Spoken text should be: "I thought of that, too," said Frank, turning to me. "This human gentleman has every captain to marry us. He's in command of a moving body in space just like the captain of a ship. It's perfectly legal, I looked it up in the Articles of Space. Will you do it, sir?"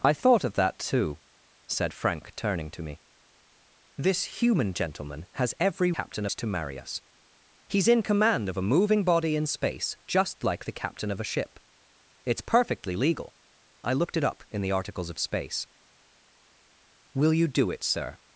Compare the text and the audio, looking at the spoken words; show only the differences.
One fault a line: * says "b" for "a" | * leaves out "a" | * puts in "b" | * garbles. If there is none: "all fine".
all fine